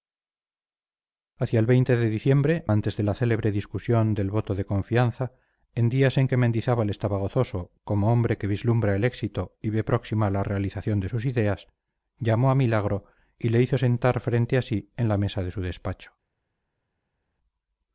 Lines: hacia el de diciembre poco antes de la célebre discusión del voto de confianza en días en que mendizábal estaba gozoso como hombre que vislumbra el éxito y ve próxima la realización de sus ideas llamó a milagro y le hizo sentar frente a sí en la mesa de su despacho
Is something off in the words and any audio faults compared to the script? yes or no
yes